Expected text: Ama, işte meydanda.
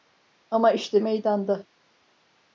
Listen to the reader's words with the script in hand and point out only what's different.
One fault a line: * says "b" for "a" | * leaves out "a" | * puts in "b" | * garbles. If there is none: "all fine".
all fine